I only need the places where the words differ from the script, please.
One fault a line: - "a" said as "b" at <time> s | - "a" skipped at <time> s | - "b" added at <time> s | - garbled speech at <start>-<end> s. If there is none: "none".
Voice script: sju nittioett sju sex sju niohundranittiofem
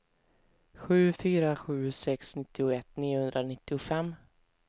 - "nittioett" said as "fyra" at 1.1 s
- "sju" said as "nittioett" at 2.3 s